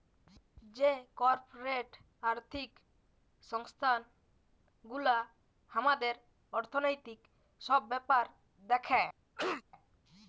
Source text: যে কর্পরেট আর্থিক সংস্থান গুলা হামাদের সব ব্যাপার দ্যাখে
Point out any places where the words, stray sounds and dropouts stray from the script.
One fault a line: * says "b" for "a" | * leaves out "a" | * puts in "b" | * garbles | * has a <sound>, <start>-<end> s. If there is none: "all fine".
* puts in "অর্থনৈতিক"
* has a cough, 9.4-9.6 s